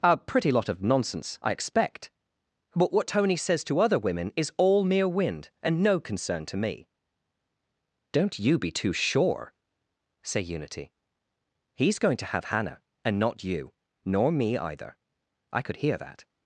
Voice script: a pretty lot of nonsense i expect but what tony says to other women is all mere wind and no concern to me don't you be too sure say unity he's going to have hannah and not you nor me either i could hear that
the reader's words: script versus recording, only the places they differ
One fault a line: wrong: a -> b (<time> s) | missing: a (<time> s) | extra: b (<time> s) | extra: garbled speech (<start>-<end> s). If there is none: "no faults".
no faults